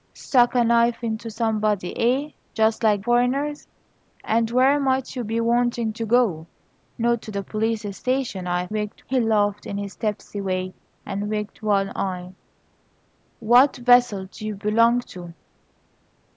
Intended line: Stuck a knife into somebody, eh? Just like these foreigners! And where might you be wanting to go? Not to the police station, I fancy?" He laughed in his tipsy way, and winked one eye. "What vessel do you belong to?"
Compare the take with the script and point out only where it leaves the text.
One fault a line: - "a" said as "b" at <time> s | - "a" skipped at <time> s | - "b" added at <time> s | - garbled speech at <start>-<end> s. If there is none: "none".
- "these" skipped at 3.0 s
- "fancy" said as "winked" at 8.7 s